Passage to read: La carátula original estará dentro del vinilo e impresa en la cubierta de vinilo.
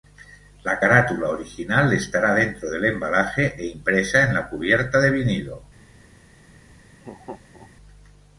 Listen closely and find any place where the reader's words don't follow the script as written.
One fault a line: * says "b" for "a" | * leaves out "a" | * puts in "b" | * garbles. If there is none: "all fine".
* says "embalaje" for "vinilo"